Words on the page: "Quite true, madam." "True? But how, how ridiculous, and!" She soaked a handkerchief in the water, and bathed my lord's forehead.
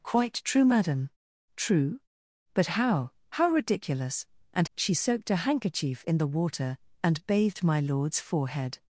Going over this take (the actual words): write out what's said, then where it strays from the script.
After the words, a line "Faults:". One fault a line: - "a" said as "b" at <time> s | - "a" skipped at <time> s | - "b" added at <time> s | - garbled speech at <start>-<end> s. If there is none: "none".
"Quite true, madam." "True? But how, how ridiculous, and!" She soaked a handkerchief in the water, and bathed my lord's forehead.
Faults:
none